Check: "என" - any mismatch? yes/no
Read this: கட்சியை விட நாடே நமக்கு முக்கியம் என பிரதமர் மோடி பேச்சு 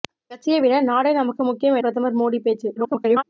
yes